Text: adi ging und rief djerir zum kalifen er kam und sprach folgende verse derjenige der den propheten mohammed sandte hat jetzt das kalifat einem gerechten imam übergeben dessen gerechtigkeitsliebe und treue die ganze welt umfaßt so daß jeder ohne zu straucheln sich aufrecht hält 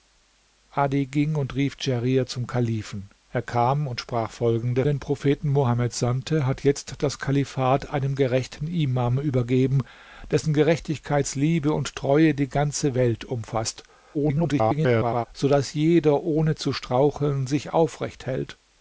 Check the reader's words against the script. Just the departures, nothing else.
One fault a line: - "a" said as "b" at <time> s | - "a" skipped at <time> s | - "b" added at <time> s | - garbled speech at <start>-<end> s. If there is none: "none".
- "verse derjenige der" skipped at 4.9 s
- garbled speech at 14.1-15.3 s